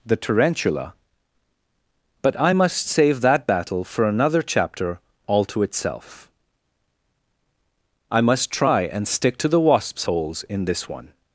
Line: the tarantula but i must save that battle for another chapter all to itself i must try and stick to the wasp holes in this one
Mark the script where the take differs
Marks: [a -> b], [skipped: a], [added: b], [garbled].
the tarantula but i must save that battle for another chapter all to itself i must try and stick to the [wasp -> wasps] holes in this one